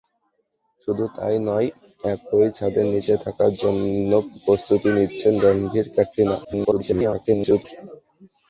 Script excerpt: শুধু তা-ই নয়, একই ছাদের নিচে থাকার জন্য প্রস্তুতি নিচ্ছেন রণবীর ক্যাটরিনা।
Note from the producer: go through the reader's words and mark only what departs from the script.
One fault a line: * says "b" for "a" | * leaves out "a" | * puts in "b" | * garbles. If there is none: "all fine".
* garbles